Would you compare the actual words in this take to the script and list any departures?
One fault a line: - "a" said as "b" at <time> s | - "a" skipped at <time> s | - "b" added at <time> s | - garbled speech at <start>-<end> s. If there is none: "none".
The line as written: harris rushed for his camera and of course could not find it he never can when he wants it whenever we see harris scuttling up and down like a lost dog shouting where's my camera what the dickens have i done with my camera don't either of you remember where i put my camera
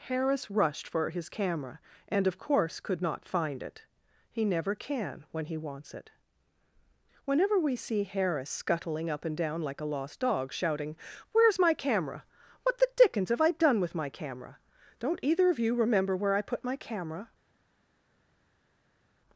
none